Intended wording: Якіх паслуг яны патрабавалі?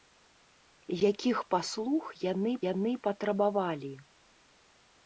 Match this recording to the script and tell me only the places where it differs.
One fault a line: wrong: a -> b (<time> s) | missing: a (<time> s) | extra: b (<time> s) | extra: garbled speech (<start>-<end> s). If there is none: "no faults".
extra: яны (2.7 s)